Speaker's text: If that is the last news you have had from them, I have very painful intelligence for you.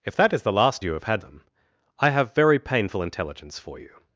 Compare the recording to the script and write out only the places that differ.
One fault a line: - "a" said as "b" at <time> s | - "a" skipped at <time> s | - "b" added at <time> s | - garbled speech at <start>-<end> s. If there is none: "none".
- "news" skipped at 0.8 s
- "from" skipped at 1.2 s